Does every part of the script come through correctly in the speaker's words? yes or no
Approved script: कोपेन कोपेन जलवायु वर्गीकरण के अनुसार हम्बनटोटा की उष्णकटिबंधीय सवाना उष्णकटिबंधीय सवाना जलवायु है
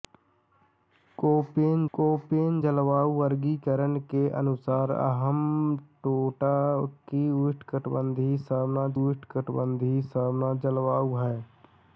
yes